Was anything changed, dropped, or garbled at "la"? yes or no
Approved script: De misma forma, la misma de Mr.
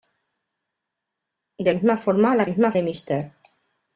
no